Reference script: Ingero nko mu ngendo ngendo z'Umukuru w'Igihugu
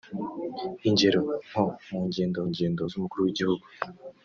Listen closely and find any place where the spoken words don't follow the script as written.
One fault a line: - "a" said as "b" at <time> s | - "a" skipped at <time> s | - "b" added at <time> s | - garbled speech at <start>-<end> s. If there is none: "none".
none